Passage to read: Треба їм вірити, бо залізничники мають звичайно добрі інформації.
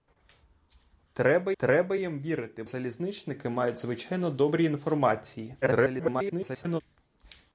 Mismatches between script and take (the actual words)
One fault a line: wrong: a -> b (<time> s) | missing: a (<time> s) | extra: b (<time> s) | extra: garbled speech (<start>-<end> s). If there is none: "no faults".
extra: треба (1.6 s)
missing: бо (2.6 s)
extra: garbled speech (5.6-6.8 s)